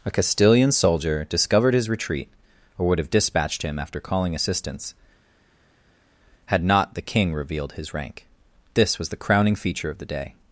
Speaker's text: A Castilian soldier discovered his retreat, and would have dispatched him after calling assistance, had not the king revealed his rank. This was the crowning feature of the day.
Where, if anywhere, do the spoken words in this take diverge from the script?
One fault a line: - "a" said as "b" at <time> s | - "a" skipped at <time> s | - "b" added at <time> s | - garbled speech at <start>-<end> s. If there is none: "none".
- "and" said as "or" at 2.8 s